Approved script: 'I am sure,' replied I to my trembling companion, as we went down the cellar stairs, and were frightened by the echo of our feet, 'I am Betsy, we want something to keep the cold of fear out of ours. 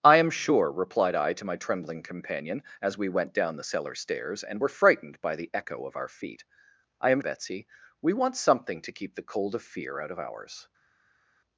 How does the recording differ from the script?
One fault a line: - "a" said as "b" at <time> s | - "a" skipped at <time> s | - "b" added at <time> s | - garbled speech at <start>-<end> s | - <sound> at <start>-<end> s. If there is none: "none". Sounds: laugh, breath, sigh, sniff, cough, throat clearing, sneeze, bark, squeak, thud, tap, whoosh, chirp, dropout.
none